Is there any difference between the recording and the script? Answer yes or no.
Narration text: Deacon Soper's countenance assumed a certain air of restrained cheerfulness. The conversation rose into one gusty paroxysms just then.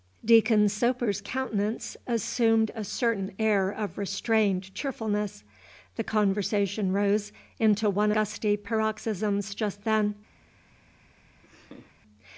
no